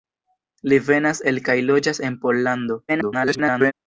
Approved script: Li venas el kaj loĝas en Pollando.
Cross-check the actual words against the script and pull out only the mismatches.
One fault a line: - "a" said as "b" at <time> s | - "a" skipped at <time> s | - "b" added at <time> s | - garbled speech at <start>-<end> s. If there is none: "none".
- garbled speech at 2.9-3.7 s